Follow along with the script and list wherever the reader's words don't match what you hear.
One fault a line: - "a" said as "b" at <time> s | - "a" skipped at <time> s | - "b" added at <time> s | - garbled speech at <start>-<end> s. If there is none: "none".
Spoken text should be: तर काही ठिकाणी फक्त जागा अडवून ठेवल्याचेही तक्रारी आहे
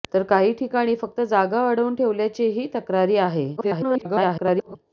- garbled speech at 3.6-4.8 s